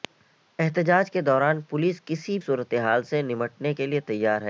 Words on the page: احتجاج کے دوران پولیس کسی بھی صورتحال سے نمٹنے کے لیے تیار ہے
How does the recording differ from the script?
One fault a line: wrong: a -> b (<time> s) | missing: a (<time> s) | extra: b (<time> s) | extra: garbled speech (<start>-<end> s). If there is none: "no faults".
missing: بھی (2.4 s)